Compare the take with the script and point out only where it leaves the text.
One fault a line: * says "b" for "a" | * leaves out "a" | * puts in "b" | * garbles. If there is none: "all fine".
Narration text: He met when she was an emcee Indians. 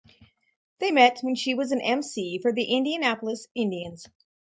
* says "They" for "He"
* puts in "for the Indianapolis"